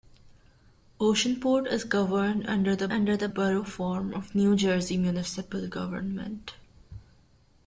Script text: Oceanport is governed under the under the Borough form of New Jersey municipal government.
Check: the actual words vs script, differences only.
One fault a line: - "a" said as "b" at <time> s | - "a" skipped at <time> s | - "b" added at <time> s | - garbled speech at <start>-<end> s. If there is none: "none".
none